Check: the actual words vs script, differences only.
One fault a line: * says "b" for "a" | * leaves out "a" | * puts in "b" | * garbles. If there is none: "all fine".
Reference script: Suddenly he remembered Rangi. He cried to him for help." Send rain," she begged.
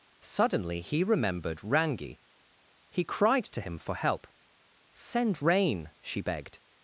all fine